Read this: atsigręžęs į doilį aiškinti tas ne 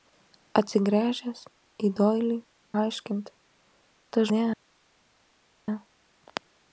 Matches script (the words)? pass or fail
pass